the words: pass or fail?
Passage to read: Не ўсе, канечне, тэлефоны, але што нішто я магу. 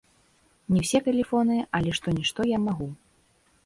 fail